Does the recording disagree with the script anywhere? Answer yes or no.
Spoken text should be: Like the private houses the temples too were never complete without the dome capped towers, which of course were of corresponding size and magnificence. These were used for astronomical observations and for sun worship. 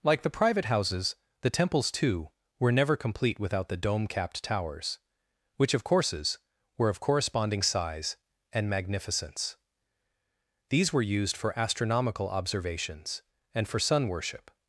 yes